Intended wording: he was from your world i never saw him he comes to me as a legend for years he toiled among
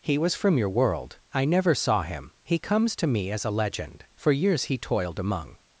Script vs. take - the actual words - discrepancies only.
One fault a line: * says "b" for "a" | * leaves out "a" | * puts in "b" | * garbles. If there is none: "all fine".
all fine